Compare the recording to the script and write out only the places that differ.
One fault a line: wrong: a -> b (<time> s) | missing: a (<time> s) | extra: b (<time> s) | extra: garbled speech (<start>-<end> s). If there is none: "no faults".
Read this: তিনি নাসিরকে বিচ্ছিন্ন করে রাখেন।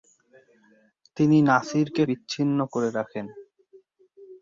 no faults